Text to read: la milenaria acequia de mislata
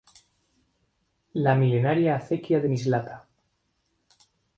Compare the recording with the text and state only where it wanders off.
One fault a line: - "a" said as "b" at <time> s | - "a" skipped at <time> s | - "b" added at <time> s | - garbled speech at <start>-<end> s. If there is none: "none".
none